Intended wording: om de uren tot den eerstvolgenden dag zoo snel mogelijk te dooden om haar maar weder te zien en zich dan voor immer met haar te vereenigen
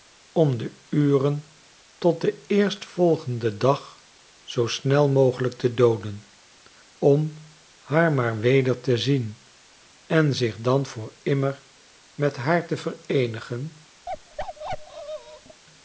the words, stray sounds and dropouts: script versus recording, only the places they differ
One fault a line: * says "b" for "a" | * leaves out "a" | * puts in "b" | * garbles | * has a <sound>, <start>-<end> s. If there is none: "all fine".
* has a bark, 14.1-15.6 s